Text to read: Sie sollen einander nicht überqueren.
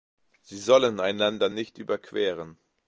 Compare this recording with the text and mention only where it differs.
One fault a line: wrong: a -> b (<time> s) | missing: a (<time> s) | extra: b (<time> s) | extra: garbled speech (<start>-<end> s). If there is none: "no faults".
no faults